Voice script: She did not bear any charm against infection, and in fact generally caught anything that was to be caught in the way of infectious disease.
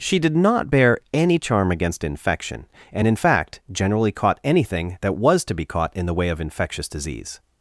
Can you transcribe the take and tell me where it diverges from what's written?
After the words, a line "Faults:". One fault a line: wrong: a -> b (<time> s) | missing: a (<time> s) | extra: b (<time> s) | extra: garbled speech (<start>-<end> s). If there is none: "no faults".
She did not bear any charm against infection, and in fact generally caught anything that was to be caught in the way of infectious disease.
Faults:
no faults